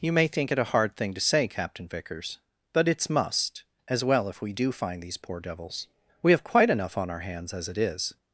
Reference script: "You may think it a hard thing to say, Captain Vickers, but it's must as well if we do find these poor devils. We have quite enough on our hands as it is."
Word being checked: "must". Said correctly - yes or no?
yes